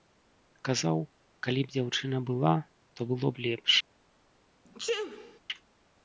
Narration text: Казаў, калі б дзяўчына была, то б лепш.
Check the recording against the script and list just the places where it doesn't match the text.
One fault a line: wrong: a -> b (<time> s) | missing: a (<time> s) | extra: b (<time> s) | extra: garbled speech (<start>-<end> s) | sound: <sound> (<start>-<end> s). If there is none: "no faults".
extra: было (3.1 s)
sound: sneeze (4.7-5.4 s)